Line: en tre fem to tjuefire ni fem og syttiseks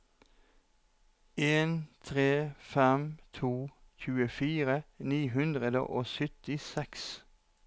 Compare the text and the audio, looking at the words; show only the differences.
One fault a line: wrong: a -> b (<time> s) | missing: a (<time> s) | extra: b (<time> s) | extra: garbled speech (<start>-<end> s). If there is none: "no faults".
wrong: fem -> hundre (5.4 s)